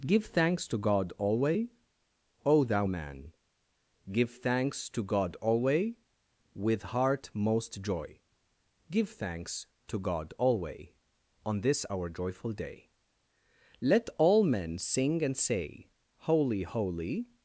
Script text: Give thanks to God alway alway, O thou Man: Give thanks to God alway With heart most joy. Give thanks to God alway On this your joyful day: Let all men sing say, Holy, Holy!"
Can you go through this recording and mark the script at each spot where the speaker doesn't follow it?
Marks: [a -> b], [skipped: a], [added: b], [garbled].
Give thanks to God alway [skipped: alway,] O thou Man: Give thanks to God alway With heart most joy. Give thanks to God alway On this [your -> our] joyful day: Let all men sing [added: and] say, Holy, Holy!"